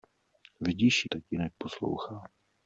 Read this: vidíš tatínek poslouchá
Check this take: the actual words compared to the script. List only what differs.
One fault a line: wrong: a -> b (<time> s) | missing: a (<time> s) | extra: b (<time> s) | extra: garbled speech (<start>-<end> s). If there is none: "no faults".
no faults